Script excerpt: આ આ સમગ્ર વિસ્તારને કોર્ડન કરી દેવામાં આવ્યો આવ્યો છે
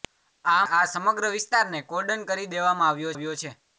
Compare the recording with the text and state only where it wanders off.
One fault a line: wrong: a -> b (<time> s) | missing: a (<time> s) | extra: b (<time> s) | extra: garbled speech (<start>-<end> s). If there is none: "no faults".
no faults